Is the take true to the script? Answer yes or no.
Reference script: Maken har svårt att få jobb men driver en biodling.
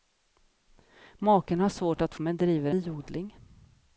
no